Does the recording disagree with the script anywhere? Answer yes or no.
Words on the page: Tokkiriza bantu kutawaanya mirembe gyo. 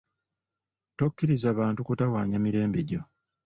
no